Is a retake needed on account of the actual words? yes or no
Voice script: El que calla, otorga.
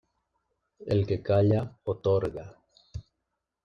no